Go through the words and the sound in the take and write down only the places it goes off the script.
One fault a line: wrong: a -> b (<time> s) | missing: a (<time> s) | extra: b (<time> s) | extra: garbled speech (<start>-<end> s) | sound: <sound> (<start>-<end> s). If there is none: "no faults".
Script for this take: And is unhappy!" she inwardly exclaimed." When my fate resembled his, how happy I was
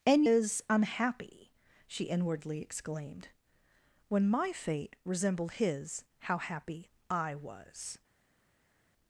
no faults